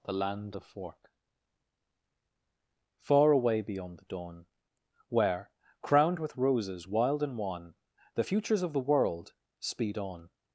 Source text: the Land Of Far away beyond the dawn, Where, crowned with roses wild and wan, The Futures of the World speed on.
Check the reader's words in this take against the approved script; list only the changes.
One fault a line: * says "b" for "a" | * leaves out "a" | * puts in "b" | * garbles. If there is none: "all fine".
* puts in "fork"